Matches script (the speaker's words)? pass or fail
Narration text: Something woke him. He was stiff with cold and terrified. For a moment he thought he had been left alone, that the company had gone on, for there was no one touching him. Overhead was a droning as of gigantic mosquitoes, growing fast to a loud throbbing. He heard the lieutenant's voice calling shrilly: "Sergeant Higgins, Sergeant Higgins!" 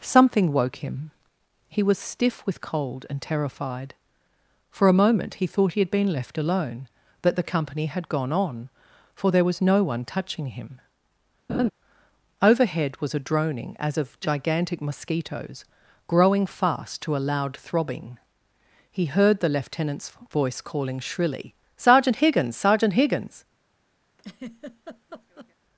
pass